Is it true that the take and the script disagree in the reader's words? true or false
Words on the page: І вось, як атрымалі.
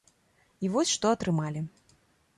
true